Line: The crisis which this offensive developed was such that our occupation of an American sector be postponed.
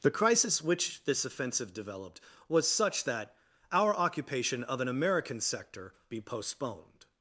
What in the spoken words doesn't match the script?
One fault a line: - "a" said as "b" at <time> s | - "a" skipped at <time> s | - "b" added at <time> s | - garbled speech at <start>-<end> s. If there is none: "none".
none